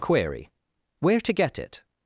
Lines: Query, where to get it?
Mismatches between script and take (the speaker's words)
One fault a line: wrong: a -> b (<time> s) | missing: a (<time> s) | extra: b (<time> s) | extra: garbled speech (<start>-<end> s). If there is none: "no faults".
no faults